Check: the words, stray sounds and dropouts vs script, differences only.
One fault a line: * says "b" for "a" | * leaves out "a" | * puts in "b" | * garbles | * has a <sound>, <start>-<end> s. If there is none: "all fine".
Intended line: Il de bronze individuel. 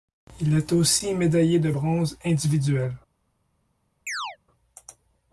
* puts in "est aussi médaillé"
* has a chirp, 4.1-4.4 s